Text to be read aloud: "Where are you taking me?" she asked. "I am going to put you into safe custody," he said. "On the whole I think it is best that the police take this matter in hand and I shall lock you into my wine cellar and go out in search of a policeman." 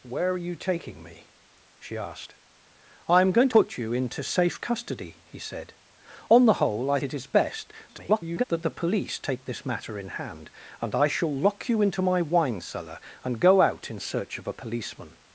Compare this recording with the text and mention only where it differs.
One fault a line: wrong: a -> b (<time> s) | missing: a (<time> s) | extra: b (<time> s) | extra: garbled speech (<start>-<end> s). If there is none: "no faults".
missing: to (3.5 s)
missing: think (7.0 s)
extra: garbled speech (7.9-8.4 s)